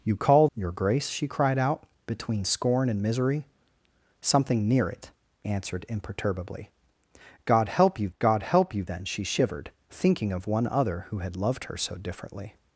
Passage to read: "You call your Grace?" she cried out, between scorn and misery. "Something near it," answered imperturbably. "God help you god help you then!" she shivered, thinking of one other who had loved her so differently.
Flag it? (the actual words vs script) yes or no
no